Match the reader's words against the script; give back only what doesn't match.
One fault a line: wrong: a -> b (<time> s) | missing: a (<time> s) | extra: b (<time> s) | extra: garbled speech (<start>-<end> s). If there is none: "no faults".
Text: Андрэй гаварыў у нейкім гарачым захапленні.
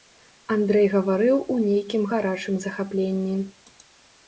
no faults